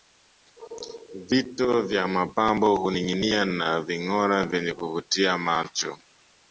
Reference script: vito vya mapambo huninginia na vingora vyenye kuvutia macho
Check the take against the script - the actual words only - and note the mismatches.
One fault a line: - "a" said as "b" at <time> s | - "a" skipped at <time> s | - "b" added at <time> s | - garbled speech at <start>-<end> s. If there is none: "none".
none